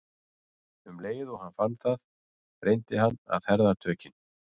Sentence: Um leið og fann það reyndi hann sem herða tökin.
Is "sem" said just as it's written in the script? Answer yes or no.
no